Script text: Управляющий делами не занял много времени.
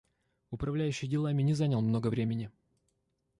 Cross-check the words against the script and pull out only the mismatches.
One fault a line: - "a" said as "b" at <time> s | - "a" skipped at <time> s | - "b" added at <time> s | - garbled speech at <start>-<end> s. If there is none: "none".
none